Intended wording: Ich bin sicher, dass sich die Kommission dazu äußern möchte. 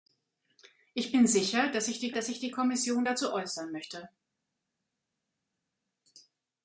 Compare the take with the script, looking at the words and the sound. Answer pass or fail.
fail